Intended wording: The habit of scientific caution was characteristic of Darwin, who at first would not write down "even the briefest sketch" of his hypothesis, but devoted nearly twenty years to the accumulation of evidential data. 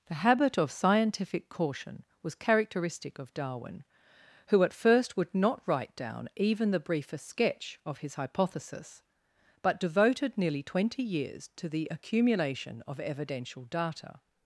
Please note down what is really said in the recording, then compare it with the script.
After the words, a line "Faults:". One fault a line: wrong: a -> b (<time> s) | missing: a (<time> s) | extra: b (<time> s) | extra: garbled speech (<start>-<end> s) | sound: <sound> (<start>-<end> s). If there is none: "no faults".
The habit of scientific caution was characteristic of Darwin, who at first would not write down "even the briefest sketch" of his hypothesis, but devoted nearly twenty years to the accumulation of evidential data.
Faults:
no faults